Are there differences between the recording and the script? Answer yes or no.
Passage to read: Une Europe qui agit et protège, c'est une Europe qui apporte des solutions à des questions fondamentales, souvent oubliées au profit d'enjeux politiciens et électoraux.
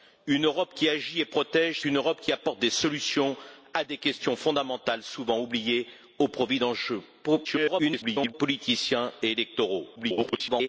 yes